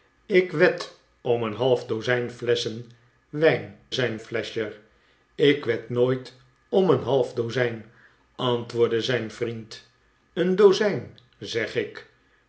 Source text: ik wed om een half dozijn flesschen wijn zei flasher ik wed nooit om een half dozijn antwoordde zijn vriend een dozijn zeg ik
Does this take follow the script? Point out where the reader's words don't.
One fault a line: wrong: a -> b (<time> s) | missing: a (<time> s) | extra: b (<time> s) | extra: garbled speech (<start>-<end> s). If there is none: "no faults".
wrong: zei -> zijn (3.9 s)